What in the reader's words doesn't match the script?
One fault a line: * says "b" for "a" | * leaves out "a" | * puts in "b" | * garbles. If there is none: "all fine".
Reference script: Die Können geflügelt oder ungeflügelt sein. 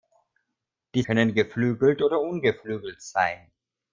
all fine